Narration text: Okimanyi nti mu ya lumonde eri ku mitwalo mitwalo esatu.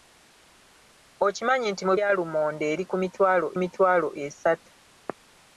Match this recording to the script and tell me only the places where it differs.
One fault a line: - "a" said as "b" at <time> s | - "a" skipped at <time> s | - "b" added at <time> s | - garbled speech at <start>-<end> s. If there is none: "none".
none